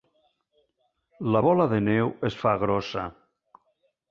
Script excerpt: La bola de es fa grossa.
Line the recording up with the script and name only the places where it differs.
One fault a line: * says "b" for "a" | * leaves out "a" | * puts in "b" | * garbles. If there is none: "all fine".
* puts in "neu"